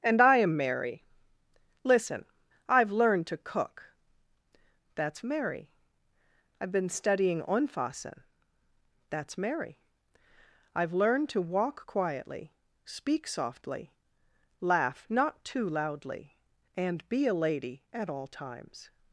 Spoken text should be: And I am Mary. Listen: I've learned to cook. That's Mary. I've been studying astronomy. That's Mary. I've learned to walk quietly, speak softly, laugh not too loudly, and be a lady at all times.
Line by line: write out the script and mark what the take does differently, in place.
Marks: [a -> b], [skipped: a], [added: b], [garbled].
And I am Mary. Listen: I've learned to cook. That's Mary. I've been studying [astronomy. -> onfassen] That's Mary. I've learned to walk quietly, speak softly, laugh not too loudly, and be a lady at all times.